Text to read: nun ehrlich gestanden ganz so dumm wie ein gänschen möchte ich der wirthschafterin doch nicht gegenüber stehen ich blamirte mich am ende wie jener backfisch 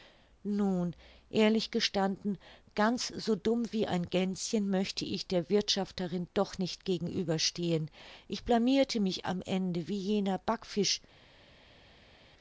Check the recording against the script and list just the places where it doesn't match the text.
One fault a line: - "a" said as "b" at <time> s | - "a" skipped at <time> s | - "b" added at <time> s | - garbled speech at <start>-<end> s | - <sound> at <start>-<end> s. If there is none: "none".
none